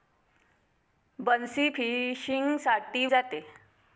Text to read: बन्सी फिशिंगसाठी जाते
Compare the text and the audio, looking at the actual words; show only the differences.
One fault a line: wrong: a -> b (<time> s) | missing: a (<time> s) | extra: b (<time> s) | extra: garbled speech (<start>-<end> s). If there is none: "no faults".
no faults